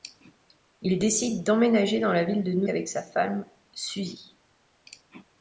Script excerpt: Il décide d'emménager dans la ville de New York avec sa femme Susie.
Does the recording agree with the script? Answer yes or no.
no